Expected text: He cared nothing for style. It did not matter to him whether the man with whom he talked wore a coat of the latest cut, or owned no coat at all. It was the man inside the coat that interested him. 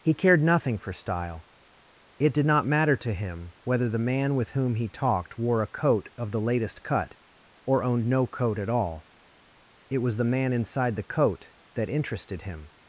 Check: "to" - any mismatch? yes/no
no